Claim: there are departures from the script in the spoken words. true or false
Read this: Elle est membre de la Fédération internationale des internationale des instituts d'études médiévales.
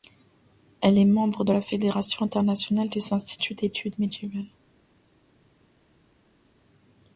true